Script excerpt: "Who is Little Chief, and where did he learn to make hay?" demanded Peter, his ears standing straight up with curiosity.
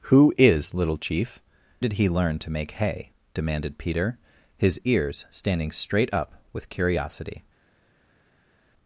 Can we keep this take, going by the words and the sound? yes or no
no